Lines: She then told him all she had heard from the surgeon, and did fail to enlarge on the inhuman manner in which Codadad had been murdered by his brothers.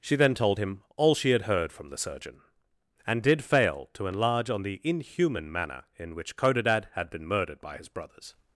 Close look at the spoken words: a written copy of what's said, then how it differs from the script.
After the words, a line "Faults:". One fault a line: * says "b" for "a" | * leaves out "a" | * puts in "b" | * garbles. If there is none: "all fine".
She then told him all she had heard from the surgeon, and did fail to enlarge on the inhuman manner in which Codadad had been murdered by his brothers.
Faults:
all fine